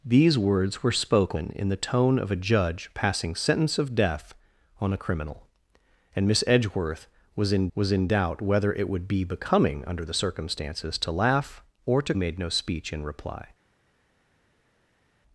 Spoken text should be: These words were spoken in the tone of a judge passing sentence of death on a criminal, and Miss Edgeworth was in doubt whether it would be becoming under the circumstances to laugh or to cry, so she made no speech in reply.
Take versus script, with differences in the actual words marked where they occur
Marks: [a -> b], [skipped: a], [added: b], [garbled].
These words were spoken in the tone of a judge passing sentence of death on a criminal, and Miss Edgeworth was in [added: was in] doubt whether it would be becoming under the circumstances to laugh or to [skipped: cry, so she] made no speech in reply.